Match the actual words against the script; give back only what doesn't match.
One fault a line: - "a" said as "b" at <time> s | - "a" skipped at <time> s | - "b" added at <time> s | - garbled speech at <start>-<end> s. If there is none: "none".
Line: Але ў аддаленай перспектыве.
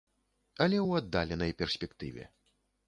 none